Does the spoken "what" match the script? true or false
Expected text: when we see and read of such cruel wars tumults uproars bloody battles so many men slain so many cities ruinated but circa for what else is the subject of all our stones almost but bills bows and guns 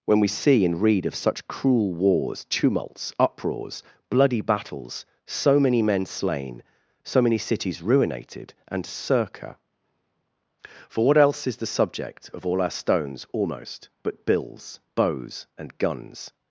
true